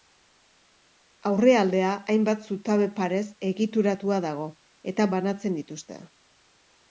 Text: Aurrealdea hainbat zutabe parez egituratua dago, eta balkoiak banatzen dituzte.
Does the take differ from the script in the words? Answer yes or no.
yes